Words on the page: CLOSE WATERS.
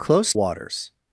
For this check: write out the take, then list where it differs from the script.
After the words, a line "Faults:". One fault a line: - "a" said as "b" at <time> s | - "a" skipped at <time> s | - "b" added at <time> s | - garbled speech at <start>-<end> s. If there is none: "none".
CLOSE WATERS.
Faults:
none